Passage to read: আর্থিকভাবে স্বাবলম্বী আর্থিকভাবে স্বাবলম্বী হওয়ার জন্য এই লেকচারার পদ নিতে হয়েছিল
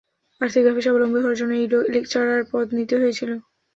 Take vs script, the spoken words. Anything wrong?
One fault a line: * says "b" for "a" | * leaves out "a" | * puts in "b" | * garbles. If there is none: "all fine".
* leaves out "আর্থিকভাবে স্বাবলম্বী"